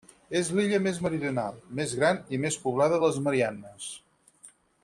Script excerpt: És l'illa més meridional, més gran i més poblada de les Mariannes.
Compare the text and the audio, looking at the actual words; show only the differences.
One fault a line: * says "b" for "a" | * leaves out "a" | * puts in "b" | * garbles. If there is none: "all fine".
all fine